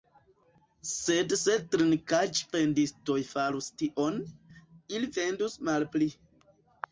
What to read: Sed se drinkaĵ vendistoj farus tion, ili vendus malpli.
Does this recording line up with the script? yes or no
yes